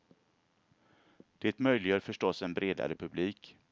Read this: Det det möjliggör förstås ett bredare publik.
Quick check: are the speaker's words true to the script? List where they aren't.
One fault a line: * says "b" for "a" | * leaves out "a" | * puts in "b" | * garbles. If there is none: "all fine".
* leaves out "det"
* says "en" for "ett"